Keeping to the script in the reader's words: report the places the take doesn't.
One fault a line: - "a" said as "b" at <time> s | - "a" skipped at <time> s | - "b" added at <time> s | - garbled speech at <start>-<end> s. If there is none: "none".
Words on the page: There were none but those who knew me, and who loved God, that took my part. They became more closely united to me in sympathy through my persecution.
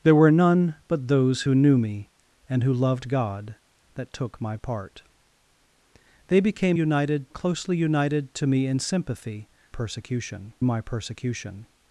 - "more" said as "united" at 6.7 s
- "through" said as "persecution" at 9.7 s